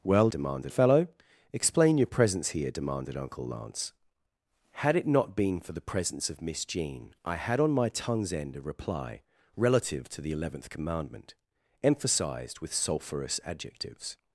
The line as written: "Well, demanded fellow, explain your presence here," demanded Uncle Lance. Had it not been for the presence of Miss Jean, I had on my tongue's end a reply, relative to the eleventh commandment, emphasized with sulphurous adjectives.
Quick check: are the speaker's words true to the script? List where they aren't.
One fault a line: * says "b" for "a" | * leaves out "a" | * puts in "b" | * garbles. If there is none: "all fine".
all fine